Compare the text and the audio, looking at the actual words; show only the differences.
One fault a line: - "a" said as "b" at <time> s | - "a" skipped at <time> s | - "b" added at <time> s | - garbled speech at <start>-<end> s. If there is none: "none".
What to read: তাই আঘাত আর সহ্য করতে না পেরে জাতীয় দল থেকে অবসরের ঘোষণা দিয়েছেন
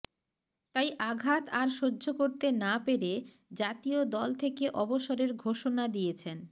none